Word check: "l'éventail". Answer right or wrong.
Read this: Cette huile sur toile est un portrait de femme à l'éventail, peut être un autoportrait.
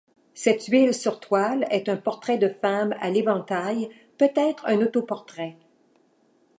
right